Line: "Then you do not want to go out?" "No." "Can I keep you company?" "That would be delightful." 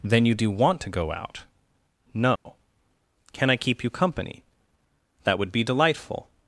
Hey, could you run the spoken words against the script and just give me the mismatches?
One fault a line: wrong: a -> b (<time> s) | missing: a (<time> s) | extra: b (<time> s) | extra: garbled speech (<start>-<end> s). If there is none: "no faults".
missing: not (0.5 s)